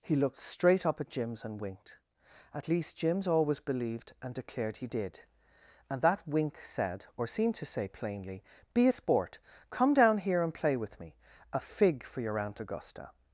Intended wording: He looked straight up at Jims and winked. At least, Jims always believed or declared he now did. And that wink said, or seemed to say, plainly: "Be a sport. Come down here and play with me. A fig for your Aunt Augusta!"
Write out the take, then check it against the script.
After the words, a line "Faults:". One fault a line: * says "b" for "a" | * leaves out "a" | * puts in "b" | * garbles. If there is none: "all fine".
He looked straight up at Jims and winked. At least, Jims always believed and declared he did. And that wink said, or seemed to say, plainly: "Be a sport. Come down here and play with me. A fig for your Aunt Augusta!"
Faults:
* says "and" for "or"
* leaves out "now"